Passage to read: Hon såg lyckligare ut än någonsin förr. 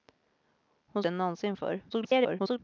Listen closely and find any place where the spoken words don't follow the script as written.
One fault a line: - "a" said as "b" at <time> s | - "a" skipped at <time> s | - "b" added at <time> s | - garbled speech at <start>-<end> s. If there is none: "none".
- "såg lyckligare ut" skipped at 1.0 s
- garbled speech at 1.9-2.6 s